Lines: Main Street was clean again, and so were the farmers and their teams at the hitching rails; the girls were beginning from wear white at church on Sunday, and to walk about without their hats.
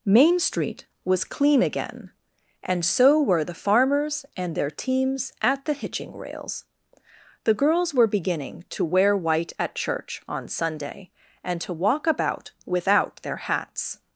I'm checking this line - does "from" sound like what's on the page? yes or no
no